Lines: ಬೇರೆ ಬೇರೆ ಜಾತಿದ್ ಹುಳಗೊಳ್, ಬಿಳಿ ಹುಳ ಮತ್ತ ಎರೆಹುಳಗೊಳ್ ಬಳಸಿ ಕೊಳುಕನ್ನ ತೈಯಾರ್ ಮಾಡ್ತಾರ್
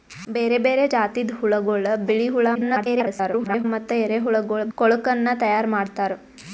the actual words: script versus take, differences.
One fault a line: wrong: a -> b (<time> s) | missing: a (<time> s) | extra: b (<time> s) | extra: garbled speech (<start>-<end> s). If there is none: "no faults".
extra: garbled speech (2.5-3.6 s)
missing: ಬಳಸಿ (4.7 s)